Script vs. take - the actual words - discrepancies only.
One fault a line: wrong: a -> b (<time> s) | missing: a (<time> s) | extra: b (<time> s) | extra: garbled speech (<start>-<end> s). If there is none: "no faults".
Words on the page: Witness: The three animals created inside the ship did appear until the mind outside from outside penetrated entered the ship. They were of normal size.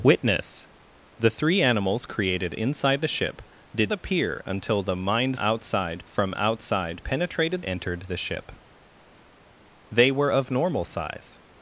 no faults